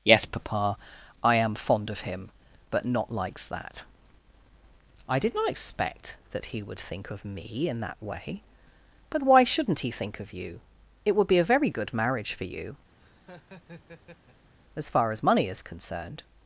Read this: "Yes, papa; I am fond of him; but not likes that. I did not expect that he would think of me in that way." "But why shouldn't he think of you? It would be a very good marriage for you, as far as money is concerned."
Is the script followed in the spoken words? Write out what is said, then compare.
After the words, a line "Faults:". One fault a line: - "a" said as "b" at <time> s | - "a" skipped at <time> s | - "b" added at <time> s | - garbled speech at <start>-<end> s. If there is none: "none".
"Yes, papa; I am fond of him; but not likes that. I did not expect that he would think of me in that way." "But why shouldn't he think of you? It would be a very good marriage for you, as far as money is concerned."
Faults:
none